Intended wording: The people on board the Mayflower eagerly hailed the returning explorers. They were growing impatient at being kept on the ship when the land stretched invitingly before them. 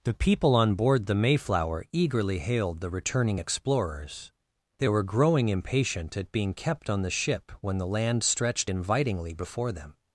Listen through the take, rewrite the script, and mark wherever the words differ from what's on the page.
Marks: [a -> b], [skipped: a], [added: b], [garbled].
The people on board the Mayflower eagerly hailed the returning explorers. They were growing impatient at being kept on the ship when the land stretched invitingly before them.